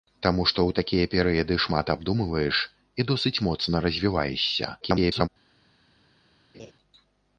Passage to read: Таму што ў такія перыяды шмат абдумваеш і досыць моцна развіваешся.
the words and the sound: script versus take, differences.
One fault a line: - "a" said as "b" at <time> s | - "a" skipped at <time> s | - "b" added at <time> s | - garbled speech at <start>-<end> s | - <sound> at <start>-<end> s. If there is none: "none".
- garbled speech at 4.8-5.3 s
- laugh at 6.5-6.7 s